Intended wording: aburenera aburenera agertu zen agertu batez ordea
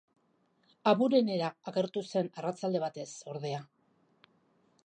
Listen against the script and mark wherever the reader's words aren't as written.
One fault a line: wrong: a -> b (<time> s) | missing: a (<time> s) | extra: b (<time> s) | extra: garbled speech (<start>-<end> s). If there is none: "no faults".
missing: aburenera (1.5 s)
wrong: agertu -> arratsalde (2.4 s)